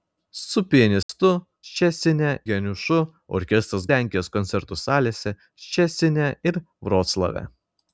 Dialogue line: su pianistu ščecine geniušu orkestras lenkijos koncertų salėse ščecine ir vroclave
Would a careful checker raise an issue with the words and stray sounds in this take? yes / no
yes